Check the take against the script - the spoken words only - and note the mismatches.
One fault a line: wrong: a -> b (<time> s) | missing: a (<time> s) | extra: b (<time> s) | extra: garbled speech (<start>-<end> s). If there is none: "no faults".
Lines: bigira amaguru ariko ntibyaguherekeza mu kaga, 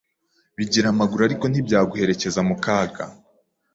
no faults